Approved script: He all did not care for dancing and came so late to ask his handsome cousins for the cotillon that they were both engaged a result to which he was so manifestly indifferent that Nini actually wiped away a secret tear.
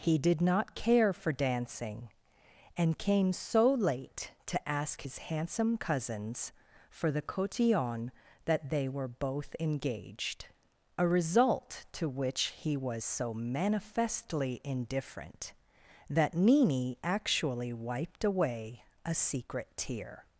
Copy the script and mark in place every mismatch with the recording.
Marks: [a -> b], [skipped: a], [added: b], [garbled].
He [skipped: all] did not care for dancing and came so late to ask his handsome cousins for the cotillon that they were both engaged a result to which he was so manifestly indifferent that Nini actually wiped away a secret tear.